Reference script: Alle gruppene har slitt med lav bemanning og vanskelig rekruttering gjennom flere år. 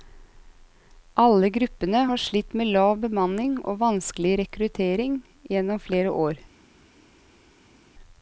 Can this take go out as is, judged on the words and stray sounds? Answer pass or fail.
pass